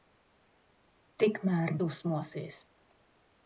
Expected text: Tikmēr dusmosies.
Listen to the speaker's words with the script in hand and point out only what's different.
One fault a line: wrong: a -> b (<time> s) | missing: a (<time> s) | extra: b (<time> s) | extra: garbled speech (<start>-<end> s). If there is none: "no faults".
no faults